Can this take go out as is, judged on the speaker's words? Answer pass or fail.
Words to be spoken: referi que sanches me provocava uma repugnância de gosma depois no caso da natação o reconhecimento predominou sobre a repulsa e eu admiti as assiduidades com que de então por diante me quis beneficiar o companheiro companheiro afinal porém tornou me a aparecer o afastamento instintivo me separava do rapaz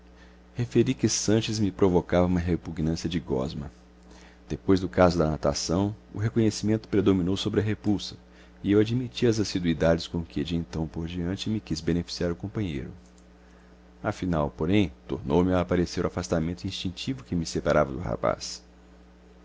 fail